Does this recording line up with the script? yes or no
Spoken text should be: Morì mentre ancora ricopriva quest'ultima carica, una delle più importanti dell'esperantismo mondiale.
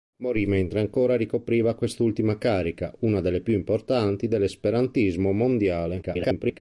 no